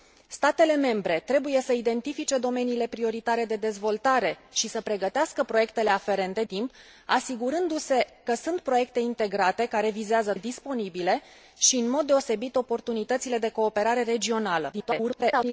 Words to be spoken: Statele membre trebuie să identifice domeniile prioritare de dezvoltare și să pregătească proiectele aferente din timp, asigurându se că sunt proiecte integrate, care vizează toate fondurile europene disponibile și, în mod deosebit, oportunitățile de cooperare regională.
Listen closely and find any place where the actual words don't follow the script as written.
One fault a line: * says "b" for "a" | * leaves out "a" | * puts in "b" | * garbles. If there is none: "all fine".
* leaves out "din"
* leaves out "toate fondurile europene"
* garbles